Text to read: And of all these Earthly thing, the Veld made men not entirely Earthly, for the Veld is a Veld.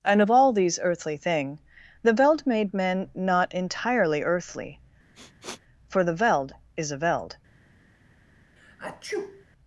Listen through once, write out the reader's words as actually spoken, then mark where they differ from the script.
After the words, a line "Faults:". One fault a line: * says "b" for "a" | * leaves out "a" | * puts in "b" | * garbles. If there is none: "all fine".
And of all these Earthly thing, the Veld made men not entirely Earthly, for the Veld is a Veld.
Faults:
all fine